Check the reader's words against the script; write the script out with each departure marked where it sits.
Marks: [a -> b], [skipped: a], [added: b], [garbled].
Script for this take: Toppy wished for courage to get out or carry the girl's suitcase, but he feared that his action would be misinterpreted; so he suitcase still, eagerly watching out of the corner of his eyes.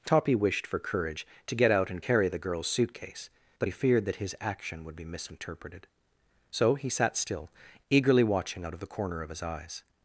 Toppy wished for courage to get out [or -> and] carry the girl's suitcase, but he feared that his action would be misinterpreted; so he [suitcase -> sat] still, eagerly watching out of the corner of his eyes.